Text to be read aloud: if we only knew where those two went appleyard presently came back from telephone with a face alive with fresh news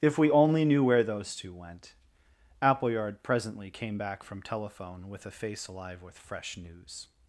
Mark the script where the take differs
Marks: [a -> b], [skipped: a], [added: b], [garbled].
if we only knew where those two went appleyard presently came back from telephone with a face alive with fresh news